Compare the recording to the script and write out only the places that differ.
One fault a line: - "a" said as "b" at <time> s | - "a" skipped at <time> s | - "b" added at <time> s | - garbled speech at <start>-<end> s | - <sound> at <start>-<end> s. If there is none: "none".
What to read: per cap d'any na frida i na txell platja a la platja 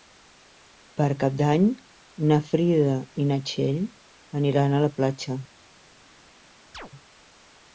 - "platja" said as "aniran" at 4.4 s
- chirp at 6.7-6.9 s